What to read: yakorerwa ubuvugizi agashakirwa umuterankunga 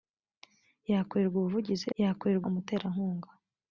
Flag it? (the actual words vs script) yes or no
yes